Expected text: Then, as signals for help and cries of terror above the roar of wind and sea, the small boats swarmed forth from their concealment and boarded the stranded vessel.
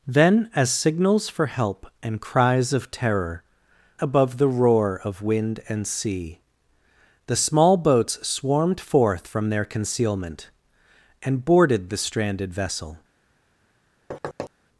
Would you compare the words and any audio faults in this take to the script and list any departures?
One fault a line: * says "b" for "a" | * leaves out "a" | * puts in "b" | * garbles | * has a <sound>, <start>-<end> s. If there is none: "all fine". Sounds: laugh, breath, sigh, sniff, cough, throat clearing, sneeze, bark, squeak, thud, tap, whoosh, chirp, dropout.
* has a thud, 14.1-14.5 s